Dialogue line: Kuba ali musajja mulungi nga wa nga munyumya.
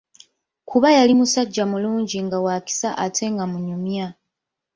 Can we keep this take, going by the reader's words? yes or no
no